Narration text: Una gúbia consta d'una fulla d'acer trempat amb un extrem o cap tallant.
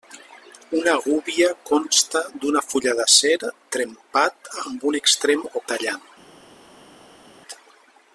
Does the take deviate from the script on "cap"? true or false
true